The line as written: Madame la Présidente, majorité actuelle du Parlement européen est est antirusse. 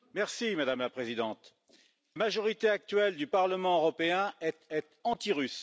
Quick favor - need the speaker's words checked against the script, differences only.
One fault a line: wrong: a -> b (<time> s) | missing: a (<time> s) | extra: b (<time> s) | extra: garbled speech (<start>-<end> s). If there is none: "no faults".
no faults